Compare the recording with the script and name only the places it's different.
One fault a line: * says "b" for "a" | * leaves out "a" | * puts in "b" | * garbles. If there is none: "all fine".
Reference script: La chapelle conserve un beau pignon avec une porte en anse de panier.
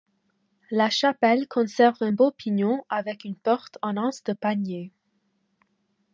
all fine